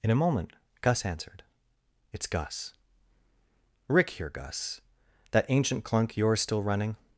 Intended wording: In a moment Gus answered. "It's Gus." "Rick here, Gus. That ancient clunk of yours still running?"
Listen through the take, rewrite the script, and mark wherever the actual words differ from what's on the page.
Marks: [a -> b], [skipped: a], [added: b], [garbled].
In a moment Gus answered. "It's Gus." "Rick here, Gus. That ancient clunk [skipped: of] yours still running?"